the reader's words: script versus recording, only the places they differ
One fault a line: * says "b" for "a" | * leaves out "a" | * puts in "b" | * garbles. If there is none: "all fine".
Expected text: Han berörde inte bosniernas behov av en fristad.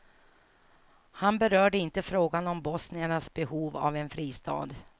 * puts in "frågan om"